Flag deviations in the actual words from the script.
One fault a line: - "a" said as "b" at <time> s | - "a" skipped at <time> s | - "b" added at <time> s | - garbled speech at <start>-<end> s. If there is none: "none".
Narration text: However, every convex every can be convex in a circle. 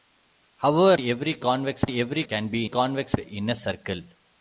none